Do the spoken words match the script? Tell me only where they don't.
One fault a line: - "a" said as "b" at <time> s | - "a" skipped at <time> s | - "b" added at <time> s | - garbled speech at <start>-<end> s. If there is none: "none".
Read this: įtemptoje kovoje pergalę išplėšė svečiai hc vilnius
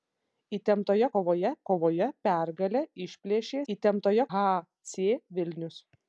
- "kovoje" added at 1.7 s
- "svečiai" said as "įtemptoje" at 3.7 s